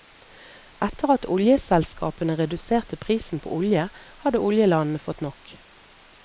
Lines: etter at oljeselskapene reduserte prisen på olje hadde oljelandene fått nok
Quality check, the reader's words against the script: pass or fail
pass